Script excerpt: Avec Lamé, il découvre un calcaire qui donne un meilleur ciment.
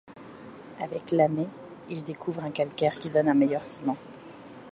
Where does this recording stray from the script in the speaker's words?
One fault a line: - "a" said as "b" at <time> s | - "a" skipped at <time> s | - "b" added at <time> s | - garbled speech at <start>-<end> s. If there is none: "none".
none